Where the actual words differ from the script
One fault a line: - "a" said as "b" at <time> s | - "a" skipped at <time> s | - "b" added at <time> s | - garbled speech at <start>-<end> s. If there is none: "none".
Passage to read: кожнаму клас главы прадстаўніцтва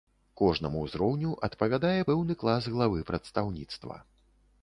- "ўзроўню адпавядае пэўны" added at 0.8 s